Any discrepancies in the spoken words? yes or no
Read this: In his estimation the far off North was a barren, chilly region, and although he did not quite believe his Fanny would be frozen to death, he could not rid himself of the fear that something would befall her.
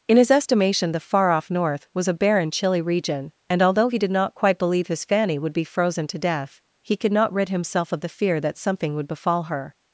no